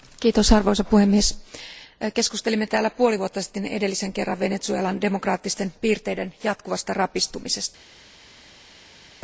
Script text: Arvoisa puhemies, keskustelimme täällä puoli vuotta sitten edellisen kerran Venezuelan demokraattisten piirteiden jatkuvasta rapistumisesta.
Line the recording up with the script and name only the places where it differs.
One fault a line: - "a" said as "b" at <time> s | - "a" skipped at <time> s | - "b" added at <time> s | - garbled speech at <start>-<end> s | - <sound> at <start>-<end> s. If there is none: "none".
none